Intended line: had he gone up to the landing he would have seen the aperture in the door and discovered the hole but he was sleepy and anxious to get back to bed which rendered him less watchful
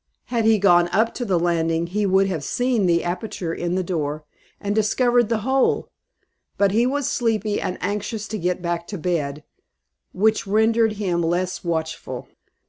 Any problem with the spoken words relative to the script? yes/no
no